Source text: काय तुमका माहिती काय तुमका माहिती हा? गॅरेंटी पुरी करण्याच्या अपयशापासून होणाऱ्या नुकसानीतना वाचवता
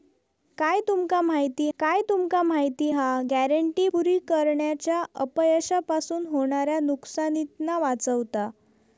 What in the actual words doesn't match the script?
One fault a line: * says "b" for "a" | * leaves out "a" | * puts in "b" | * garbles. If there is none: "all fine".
all fine